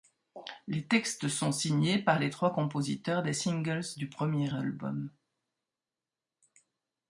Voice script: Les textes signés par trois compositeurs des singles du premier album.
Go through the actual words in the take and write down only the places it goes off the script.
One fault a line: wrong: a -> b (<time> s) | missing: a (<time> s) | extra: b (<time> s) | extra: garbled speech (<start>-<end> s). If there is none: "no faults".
extra: sont (1.3 s)
extra: les (2.2 s)